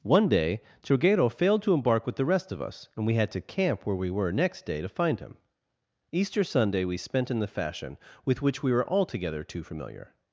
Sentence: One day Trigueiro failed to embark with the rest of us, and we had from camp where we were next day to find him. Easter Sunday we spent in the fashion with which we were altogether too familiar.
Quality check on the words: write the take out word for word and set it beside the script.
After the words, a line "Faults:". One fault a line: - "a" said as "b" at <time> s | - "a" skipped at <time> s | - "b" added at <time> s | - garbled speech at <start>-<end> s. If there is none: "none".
One day Trigueiro failed to embark with the rest of us, and we had to camp where we were next day to find him. Easter Sunday we spent in the fashion with which we were altogether too familiar.
Faults:
- "from" said as "to" at 3.3 s